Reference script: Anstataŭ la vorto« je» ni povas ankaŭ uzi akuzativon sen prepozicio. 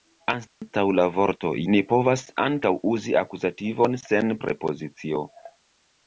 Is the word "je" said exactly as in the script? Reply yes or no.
no